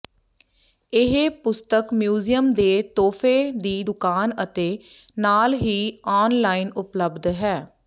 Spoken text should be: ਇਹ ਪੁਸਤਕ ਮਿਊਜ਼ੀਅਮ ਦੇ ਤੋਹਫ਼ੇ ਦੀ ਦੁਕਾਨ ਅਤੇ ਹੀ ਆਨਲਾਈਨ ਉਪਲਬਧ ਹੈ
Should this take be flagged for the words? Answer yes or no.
yes